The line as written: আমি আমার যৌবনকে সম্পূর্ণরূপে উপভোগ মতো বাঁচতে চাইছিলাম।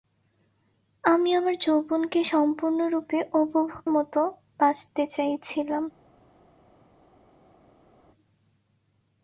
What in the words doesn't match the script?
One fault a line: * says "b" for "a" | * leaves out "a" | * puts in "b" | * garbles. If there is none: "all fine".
all fine